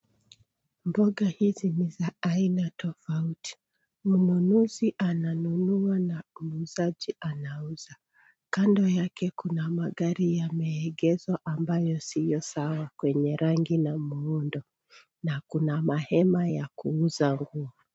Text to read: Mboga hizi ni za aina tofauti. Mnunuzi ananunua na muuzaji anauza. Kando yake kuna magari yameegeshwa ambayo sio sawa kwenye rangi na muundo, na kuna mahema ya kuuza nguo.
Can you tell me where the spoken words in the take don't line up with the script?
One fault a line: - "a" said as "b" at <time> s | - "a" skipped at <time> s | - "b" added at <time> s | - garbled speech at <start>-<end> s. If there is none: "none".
none